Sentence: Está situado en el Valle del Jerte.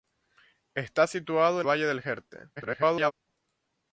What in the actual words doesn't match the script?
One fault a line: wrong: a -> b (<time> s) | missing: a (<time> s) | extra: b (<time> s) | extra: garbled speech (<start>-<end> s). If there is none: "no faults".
missing: el (1.7 s)
extra: garbled speech (2.6-3.1 s)